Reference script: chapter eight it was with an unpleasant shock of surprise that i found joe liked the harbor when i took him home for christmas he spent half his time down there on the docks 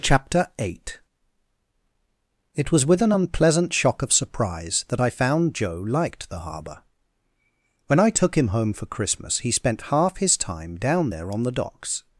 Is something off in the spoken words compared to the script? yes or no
no